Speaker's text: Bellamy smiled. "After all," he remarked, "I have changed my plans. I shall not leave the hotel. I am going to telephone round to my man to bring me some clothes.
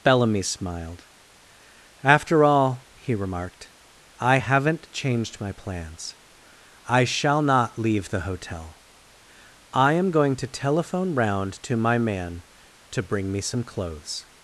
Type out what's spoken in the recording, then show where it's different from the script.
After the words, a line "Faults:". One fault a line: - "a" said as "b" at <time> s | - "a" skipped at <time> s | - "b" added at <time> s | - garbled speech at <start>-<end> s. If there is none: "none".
Bellamy smiled. "After all," he remarked, "I haven't changed my plans. I shall not leave the hotel. I am going to telephone round to my man to bring me some clothes.
Faults:
- "have" said as "haven't" at 4.4 s